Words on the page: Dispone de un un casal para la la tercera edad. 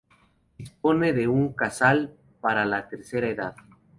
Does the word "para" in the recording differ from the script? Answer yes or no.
no